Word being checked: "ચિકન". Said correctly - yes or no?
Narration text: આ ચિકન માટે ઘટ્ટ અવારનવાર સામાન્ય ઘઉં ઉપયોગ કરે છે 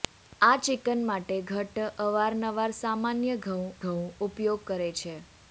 yes